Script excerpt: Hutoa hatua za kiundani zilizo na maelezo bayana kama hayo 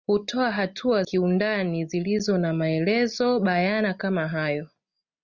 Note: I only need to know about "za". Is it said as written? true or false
false